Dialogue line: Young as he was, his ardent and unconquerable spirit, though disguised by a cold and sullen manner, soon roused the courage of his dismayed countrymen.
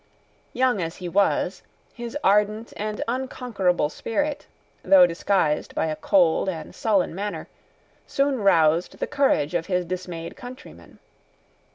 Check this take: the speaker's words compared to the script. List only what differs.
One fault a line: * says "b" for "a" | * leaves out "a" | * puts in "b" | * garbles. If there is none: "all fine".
all fine